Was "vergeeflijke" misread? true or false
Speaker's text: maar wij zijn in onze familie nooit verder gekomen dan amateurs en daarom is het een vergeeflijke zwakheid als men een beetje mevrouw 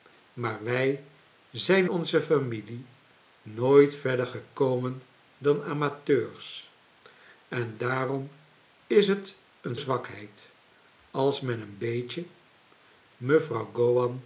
true